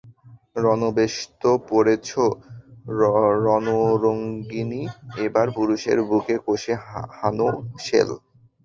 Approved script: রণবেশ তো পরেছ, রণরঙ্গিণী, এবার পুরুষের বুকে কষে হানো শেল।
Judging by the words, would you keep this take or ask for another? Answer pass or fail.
pass